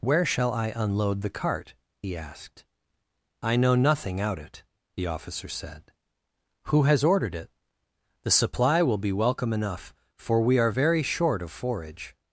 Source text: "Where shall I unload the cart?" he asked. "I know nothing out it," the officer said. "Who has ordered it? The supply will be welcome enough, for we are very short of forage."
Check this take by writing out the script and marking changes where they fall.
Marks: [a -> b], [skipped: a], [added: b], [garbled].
"Where shall I unload the cart?" he asked. "I know nothing out it," the officer said. "Who has ordered it? The supply will be welcome enough, for we are very short of forage."